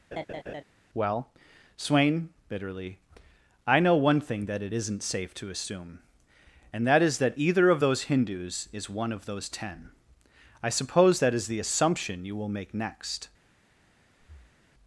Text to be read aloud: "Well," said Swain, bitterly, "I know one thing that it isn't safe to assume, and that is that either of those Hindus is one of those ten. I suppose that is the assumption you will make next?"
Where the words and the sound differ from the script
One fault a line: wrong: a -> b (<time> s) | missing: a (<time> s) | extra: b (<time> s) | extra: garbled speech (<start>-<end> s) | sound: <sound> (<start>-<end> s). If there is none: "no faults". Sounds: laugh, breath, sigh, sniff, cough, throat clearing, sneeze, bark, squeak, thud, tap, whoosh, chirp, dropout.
sound: laugh (0.1-0.6 s)
missing: said (1.3 s)
sound: breath (14.2-14.7 s)